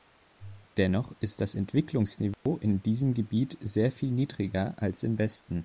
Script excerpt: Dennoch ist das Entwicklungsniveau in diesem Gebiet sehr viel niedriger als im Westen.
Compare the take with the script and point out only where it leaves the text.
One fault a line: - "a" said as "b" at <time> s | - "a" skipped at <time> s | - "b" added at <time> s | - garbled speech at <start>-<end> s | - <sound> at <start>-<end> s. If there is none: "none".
- dropout at 2.3-2.5 s